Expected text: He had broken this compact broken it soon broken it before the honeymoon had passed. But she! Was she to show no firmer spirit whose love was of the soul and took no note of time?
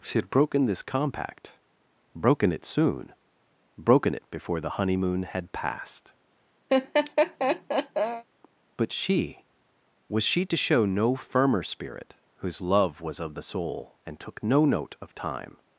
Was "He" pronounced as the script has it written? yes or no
no